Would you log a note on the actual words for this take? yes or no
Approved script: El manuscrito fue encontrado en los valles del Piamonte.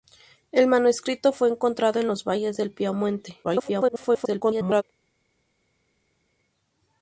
yes